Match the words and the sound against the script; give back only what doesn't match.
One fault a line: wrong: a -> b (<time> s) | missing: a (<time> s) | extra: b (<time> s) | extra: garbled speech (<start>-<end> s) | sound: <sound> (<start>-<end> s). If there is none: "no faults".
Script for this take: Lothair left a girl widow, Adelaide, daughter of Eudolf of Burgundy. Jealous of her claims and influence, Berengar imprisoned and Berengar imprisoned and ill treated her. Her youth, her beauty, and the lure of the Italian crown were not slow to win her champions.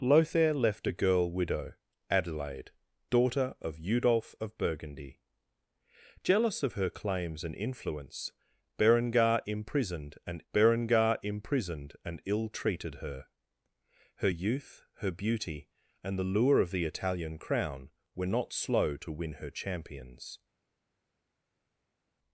no faults